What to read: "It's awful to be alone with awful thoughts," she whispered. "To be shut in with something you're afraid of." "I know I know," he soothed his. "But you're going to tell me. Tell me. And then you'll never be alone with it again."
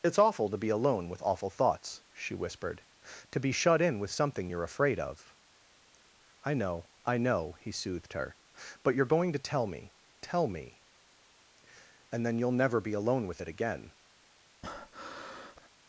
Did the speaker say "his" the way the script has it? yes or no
no